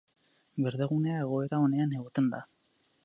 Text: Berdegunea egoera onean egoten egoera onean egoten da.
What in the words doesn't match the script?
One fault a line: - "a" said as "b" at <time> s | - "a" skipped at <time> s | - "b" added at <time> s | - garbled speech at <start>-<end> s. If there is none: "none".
- "egoera onean egoten" skipped at 2.3 s